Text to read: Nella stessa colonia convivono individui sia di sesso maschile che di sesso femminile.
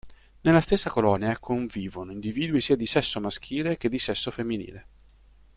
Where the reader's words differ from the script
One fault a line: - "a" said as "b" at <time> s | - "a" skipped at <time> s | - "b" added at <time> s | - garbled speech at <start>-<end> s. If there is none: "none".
none